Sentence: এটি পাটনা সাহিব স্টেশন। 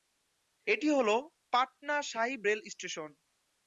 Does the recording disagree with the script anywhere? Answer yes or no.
yes